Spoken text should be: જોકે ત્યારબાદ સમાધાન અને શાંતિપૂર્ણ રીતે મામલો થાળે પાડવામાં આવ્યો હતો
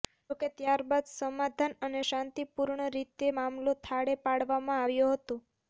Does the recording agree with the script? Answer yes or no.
yes